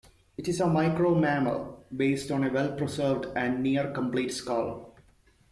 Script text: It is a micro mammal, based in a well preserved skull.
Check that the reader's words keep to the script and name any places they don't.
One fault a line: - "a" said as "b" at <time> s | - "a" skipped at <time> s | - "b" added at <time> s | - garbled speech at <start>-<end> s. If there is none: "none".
- "in" said as "on" at 2.3 s
- "and near complete" added at 3.4 s